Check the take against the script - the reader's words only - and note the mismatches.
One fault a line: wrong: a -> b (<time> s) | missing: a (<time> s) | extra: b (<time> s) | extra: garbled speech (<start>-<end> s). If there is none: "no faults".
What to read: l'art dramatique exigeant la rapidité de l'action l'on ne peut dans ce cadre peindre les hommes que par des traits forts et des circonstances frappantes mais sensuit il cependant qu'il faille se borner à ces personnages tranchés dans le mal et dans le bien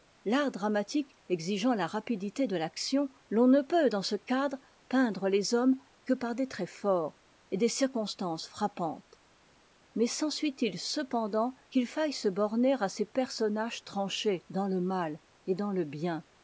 no faults